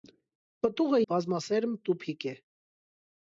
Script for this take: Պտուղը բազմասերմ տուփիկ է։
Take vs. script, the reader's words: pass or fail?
pass